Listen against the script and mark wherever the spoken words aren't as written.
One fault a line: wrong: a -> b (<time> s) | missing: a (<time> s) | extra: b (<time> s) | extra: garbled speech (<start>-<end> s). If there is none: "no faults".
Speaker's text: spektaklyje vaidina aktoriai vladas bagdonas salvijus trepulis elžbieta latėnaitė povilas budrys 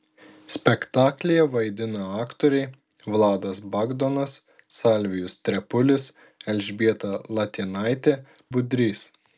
missing: povilas (8.2 s)